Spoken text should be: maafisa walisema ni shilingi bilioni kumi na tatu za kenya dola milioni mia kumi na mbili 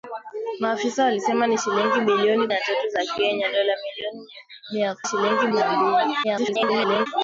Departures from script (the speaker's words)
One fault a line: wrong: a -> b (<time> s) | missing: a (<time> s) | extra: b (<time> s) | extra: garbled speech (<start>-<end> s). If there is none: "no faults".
missing: kumi (2.5 s)
wrong: kumi -> shilingi (5.0 s)
extra: garbled speech (6.2-7.1 s)